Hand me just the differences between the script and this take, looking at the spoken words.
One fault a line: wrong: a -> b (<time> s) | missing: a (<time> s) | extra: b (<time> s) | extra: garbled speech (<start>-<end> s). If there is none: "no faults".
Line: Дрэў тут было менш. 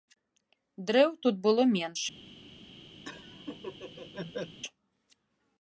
no faults